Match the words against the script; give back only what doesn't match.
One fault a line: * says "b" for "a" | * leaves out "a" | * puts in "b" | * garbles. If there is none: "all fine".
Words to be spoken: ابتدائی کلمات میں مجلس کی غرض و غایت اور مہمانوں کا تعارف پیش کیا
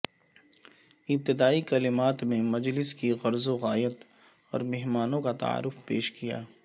all fine